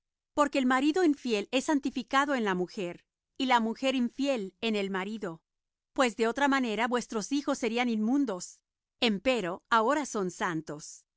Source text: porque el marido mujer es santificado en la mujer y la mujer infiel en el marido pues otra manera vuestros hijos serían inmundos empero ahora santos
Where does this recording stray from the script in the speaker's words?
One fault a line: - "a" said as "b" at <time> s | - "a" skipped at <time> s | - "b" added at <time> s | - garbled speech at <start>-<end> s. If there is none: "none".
- "mujer" said as "infiel" at 1.0 s
- "de" added at 6.2 s
- "son" added at 10.1 s